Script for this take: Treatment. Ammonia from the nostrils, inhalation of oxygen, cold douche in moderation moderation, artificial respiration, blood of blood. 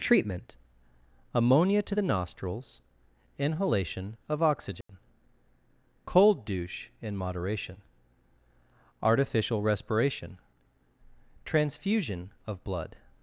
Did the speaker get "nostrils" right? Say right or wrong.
right